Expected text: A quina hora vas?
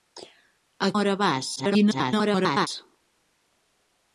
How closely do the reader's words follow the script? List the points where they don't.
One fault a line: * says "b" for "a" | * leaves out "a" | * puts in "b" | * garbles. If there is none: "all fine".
* leaves out "quina"
* garbles